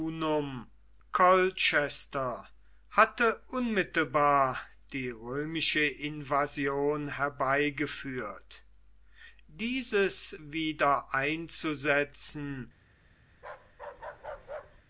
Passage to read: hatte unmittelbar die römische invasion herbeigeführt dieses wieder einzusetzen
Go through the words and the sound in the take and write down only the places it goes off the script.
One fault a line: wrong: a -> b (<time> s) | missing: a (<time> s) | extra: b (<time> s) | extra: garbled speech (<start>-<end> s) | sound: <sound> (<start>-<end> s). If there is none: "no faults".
sound: bark (13.3-14.8 s)